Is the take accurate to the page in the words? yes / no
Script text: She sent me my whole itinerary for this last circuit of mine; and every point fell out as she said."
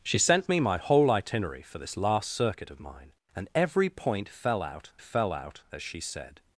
no